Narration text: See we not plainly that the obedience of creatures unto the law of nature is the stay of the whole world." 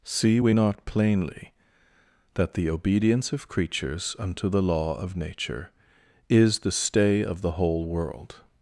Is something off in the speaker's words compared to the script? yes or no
no